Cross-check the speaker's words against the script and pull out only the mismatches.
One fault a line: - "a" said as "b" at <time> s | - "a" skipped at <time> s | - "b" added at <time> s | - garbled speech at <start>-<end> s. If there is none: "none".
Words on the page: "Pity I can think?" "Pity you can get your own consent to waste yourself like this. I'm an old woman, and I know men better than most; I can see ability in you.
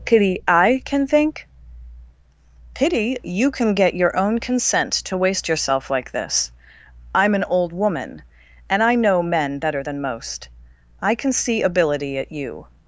- "in" said as "at" at 12.2 s